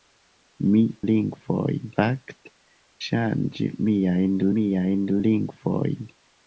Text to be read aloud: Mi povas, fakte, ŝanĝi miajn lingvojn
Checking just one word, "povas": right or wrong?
wrong